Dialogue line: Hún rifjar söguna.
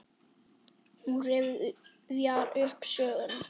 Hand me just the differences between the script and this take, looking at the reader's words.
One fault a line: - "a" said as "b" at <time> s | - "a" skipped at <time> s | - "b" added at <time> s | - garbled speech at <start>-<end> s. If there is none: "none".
- "upp" added at 2.6 s